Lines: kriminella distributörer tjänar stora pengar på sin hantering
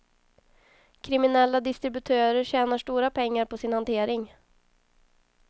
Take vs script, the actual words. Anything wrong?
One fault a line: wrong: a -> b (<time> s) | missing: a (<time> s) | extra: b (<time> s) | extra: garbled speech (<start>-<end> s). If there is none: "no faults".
no faults